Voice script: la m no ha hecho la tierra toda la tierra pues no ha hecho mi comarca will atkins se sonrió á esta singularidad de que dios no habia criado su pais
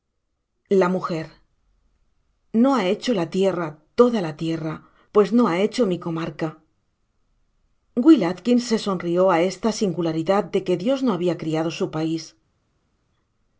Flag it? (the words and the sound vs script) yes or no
no